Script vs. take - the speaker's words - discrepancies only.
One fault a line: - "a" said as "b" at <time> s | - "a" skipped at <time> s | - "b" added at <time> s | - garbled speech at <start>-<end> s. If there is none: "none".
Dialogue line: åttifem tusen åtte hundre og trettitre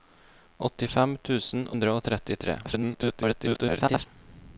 - "åtte" skipped at 1.7 s
- garbled speech at 2.6-4.1 s